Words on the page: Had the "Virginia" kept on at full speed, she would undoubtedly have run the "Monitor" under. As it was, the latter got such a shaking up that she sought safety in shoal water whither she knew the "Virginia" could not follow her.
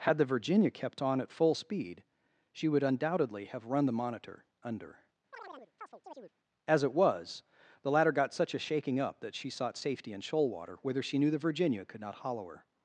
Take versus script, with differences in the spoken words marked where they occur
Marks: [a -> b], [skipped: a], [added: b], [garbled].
Had the "Virginia" kept on at full speed, she would undoubtedly have run the "Monitor" under. As it was, the latter got such a shaking up that she sought safety in shoal water whither she knew the "Virginia" could not [follow -> hollow] her.